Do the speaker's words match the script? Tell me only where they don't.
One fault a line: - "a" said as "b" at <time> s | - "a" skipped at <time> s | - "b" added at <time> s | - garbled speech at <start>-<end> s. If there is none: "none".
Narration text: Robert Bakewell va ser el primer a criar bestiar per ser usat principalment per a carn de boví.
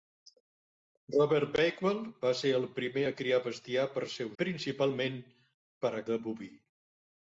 - "usat" skipped at 4.3 s
- "carn" skipped at 6.1 s